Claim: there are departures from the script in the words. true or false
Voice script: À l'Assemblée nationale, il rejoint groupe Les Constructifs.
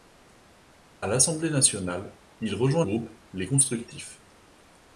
false